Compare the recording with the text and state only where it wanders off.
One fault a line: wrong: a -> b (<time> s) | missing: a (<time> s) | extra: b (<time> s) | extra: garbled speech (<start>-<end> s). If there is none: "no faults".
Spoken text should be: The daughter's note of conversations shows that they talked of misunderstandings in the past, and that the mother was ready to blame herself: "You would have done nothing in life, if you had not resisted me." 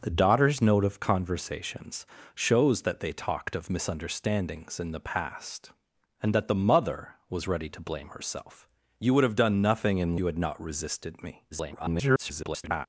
missing: life if (10.1 s)
extra: garbled speech (11.5-12.9 s)